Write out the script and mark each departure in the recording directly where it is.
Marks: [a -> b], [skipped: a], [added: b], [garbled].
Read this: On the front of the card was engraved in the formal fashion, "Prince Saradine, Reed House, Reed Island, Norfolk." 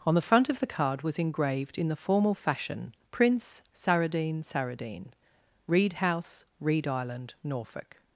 On the front of the card was engraved in the formal fashion, "Prince Saradine, [added: Saradine] Reed House, Reed Island, Norfolk."